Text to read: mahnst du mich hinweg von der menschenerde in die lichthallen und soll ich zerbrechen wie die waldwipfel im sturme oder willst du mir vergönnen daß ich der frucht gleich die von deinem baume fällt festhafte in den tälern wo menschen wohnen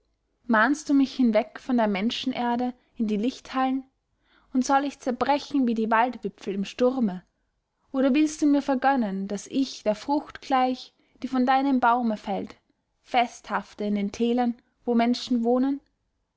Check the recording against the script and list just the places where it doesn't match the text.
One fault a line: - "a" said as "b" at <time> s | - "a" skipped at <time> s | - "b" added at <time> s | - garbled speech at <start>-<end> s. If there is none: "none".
none